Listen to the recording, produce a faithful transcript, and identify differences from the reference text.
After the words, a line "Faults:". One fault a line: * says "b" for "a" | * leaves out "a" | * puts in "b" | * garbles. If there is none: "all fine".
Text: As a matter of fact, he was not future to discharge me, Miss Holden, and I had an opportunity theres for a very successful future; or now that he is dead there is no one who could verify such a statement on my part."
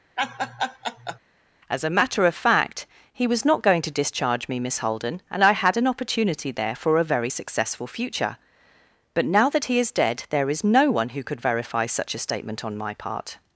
As a matter of fact, he was not going to discharge me, Miss Holden, and I had an opportunity there for a very successful future; but now that he is dead there is no one who could verify such a statement on my part."
Faults:
* says "going" for "future"
* says "there" for "theres"
* says "but" for "or"